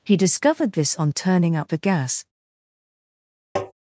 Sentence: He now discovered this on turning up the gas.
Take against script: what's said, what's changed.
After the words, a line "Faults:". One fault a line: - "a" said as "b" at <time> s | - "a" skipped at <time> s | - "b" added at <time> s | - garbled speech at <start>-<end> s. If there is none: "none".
He discovered this on turning up the gas.
Faults:
- "now" skipped at 0.2 s